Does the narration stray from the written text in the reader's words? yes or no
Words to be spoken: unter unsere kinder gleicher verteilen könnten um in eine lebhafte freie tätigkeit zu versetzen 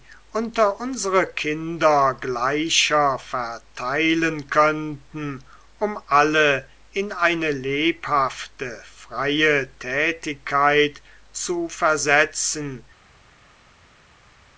yes